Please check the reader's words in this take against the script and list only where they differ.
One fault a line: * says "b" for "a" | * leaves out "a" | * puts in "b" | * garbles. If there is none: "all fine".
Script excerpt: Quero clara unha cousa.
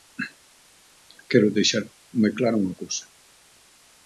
* puts in "deixar moi"